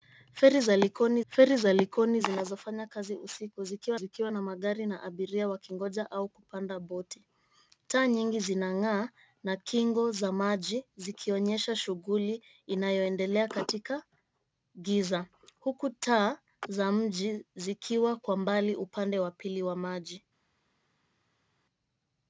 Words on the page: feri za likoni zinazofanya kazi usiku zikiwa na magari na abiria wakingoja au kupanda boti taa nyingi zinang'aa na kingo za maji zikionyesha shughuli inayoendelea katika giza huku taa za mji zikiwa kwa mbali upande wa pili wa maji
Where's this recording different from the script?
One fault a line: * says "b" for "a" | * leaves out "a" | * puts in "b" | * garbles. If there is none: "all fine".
* puts in "feri za likoni"
* puts in "zikiwa"